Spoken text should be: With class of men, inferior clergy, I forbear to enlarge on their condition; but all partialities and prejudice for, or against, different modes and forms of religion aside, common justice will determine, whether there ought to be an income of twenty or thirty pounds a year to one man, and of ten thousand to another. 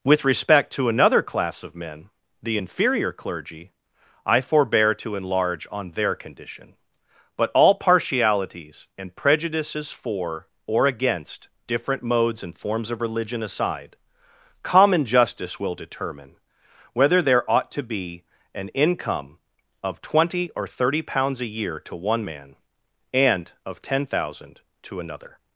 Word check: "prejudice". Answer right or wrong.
wrong